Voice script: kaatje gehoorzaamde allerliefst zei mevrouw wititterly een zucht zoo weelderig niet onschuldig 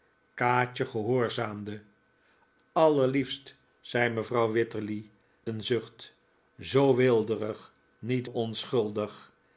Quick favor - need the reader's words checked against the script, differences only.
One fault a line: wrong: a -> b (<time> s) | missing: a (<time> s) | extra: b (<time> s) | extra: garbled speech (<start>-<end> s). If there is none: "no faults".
no faults